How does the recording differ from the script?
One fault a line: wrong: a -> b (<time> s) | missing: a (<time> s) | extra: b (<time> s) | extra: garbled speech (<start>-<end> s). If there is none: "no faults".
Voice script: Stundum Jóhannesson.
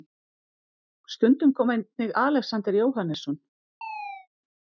extra: kom einnig Alexander (1.5 s)